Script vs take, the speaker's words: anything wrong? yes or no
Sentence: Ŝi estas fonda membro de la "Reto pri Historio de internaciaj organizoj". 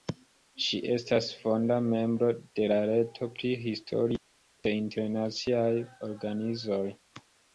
no